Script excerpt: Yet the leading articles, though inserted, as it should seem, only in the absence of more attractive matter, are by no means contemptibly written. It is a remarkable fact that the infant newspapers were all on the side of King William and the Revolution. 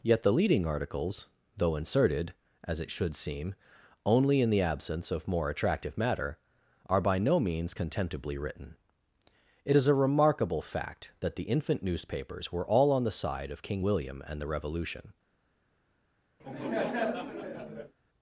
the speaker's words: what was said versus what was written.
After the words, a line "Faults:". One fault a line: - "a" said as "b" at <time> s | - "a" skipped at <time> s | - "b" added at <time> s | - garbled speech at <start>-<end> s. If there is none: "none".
Yet the leading articles, though inserted, as it should seem, only in the absence of more attractive matter, are by no means contemptibly written. It is a remarkable fact that the infant newspapers were all on the side of King William and the Revolution.
Faults:
none